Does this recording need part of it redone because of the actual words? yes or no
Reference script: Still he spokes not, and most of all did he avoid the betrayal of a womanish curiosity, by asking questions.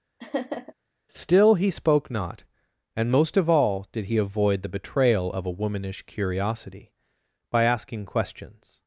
yes